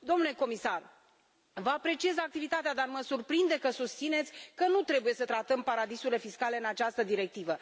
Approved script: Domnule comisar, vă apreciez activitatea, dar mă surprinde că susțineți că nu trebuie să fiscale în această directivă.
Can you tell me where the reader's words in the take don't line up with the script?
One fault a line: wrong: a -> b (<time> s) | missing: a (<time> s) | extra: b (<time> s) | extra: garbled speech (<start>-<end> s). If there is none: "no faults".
extra: tratăm paradisurile (5.2 s)